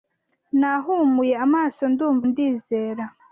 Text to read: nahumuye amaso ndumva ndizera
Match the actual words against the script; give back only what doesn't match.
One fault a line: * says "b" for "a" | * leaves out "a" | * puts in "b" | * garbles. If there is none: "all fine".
all fine